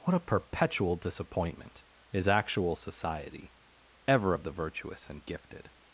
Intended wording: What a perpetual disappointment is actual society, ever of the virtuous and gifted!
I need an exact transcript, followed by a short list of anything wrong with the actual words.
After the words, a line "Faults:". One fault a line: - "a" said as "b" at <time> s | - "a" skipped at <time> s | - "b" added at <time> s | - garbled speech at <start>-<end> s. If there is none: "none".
What a perpetual disappointment is actual society, ever of the virtuous and gifted!
Faults:
none